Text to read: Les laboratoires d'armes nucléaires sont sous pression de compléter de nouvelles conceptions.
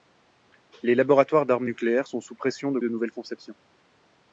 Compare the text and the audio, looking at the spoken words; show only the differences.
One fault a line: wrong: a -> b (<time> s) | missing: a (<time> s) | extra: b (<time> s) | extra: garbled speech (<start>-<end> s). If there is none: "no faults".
missing: compléter (2.8 s)